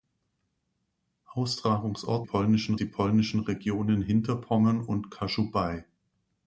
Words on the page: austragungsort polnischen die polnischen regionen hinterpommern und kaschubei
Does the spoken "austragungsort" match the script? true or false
true